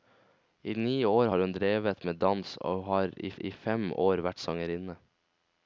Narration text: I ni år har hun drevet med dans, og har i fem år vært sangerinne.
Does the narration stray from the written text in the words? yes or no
yes